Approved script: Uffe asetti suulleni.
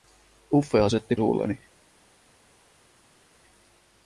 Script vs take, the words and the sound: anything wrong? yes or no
no